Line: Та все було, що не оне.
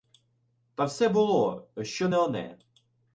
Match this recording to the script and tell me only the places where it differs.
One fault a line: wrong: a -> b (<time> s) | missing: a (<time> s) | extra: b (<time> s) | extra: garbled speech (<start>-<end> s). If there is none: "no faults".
no faults